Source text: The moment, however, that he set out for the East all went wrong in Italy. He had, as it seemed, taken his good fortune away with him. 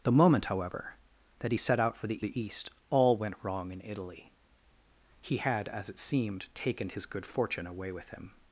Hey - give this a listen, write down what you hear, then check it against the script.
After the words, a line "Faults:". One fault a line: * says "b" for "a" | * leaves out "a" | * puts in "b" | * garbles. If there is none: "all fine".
The moment, however, that he set out for the the East all went wrong in Italy. He had, as it seemed, taken his good fortune away with him.
Faults:
* puts in "the"